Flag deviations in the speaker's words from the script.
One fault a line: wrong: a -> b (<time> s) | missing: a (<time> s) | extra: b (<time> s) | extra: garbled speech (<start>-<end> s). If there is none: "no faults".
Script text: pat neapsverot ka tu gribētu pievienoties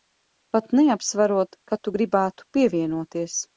no faults